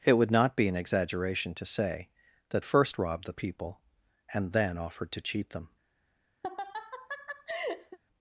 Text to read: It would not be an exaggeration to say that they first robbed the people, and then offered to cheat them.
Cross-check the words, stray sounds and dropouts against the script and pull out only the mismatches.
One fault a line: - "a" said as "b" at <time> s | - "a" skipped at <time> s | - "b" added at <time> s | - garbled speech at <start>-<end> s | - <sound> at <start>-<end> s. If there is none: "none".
- "they" skipped at 2.6 s
- laugh at 6.4-8.0 s